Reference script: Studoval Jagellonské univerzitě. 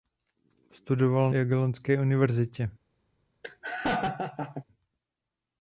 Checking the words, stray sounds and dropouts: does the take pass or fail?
fail